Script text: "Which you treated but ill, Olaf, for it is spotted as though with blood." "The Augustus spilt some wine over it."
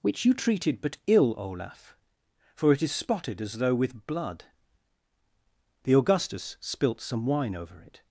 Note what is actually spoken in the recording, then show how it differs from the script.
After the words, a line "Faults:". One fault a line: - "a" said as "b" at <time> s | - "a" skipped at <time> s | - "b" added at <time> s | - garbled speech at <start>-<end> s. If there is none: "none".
"Which you treated but ill, Olaf, for it is spotted as though with blood." "The Augustus spilt some wine over it."
Faults:
none